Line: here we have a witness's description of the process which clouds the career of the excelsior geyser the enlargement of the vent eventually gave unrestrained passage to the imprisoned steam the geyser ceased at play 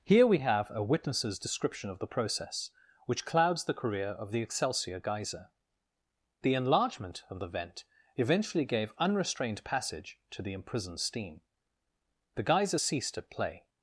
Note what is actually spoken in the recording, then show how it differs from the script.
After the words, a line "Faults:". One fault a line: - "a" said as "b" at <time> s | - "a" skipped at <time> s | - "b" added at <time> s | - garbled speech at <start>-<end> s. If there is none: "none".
here we have a witness's description of the process which clouds the career of the excelsior geyser the enlargement of the vent eventually gave unrestrained passage to the imprisoned steam the geyser ceased at play
Faults:
none